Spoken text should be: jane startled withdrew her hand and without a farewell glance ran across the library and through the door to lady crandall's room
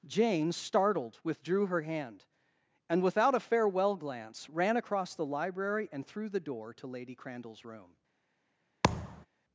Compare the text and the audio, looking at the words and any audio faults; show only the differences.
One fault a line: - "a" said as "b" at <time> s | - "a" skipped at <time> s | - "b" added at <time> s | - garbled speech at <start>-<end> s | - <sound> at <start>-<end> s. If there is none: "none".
- thud at 8.8-9.3 s